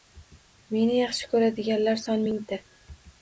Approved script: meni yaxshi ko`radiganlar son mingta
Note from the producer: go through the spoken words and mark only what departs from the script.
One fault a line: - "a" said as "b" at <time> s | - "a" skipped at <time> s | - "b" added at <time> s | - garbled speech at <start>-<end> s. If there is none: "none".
none